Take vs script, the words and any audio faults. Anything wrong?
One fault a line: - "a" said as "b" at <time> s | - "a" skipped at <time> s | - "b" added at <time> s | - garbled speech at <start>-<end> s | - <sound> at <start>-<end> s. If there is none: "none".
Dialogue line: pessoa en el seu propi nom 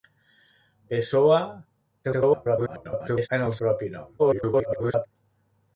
- garbled speech at 2.0-3.3 s
- "seu" skipped at 3.5 s
- garbled speech at 4.2-5.1 s